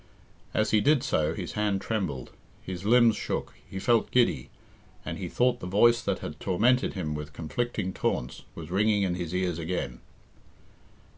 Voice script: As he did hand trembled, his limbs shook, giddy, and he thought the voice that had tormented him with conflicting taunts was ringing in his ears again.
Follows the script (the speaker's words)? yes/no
no